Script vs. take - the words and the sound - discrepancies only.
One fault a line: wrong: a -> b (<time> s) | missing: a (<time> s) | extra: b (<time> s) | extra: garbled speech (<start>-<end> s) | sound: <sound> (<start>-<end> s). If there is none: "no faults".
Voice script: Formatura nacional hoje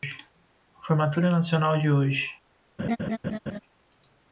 extra: de (1.8 s)
sound: laugh (2.8-3.6 s)